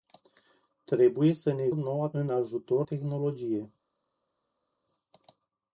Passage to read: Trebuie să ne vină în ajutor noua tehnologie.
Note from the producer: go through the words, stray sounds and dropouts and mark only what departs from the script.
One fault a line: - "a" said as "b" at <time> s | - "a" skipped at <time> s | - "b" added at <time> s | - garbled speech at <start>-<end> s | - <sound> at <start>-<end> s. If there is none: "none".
- "vină" said as "noua" at 1.7 s
- "noua" skipped at 2.9 s